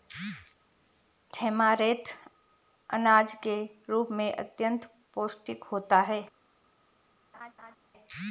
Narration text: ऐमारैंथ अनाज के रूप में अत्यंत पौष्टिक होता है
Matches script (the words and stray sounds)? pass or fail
fail